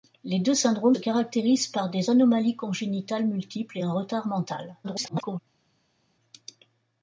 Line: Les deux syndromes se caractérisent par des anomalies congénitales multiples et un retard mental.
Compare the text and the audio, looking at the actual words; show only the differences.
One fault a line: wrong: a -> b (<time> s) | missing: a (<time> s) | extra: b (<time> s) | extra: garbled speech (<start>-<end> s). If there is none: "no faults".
missing: se (0.9 s)
extra: garbled speech (4.8-5.4 s)